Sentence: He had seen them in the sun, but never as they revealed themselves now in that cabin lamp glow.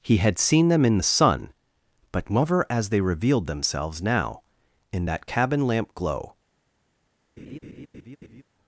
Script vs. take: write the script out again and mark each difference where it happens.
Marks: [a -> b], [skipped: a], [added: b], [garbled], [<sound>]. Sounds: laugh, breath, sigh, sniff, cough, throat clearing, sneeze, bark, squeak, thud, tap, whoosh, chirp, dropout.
He had seen them in the sun, but never as they revealed themselves now in that cabin lamp glow. [laugh]